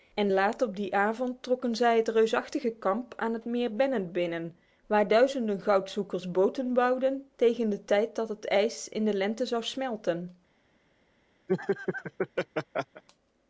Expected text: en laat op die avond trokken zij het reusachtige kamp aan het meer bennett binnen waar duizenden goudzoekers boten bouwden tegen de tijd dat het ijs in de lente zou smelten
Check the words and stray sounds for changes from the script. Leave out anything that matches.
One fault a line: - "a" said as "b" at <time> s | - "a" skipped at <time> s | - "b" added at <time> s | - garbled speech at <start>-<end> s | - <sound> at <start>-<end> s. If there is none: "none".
- laugh at 11.5-13.0 s